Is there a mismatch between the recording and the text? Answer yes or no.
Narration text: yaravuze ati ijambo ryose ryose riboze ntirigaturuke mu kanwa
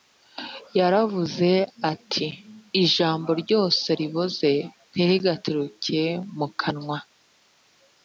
yes